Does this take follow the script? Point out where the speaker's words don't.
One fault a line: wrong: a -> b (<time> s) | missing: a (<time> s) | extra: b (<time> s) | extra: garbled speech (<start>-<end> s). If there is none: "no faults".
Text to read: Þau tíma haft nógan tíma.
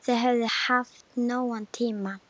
wrong: tíma -> höfðu (0.2 s)